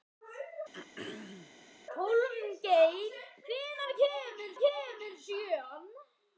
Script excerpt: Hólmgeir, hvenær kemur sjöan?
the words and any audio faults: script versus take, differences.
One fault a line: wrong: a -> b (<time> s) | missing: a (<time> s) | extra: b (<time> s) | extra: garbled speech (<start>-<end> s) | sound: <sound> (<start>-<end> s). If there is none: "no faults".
sound: throat clearing (0.7-1.6 s)
extra: kemur (4.6 s)